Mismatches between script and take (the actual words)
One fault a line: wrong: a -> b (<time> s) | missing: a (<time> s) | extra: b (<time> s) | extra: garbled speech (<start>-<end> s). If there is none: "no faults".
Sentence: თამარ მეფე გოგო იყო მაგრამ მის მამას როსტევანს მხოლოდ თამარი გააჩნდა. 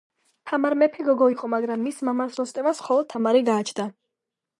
no faults